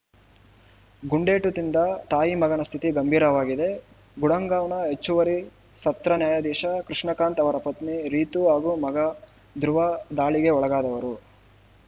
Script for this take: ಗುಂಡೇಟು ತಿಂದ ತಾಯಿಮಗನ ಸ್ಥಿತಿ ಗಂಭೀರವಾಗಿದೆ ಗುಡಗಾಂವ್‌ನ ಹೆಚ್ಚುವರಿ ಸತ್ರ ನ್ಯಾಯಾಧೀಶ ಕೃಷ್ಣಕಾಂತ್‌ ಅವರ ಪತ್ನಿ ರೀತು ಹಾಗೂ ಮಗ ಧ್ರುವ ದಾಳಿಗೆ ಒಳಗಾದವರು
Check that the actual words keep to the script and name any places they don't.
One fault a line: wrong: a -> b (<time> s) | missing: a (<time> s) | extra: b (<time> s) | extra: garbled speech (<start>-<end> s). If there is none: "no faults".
no faults